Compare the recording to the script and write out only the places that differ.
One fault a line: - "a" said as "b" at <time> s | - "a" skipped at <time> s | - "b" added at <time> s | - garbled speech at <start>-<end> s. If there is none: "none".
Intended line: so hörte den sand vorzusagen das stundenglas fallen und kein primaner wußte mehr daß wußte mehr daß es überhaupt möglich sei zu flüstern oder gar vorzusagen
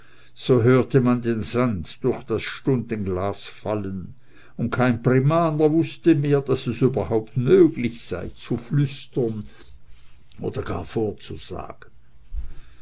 - "man" added at 1.0 s
- "vorzusagen" said as "durch" at 2.0 s
- "wußte mehr daß" skipped at 6.7 s